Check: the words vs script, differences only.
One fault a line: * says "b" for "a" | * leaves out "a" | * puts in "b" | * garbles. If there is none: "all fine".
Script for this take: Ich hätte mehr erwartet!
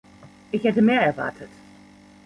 all fine